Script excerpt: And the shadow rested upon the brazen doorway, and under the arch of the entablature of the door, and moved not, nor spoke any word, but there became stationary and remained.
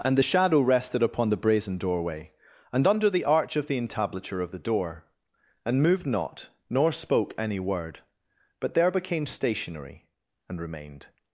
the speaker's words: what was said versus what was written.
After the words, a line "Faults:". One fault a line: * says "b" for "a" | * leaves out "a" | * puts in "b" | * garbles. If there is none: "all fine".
And the shadow rested upon the brazen doorway, and under the arch of the entablature of the door, and moved not, nor spoke any word, but there became stationary and remained.
Faults:
all fine